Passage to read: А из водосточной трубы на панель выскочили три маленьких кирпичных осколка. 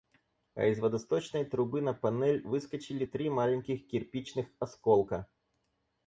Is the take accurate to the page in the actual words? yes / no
yes